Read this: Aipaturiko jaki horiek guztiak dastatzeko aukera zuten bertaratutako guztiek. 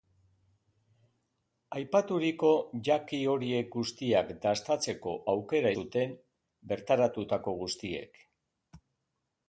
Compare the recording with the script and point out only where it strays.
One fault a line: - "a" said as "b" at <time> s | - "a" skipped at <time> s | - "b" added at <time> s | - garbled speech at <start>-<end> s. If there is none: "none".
none